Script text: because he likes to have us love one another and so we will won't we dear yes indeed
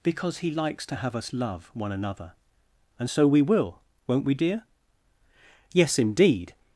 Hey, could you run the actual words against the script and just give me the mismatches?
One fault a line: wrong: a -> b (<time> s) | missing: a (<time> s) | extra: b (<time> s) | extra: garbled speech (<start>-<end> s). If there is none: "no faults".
no faults